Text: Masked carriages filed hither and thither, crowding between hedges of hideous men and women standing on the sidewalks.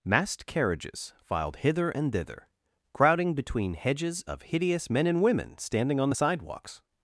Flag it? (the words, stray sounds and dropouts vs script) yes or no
yes